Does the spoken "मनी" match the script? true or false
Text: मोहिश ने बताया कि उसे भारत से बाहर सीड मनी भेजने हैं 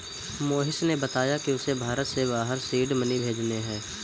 true